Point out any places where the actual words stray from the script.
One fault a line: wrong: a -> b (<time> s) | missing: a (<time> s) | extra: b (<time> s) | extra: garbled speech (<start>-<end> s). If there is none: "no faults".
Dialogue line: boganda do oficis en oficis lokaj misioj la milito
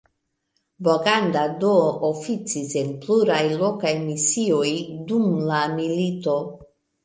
wrong: oficis -> pluraj (3.0 s)
extra: dum (5.1 s)